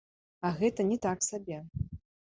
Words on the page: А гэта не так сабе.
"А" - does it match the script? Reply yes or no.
yes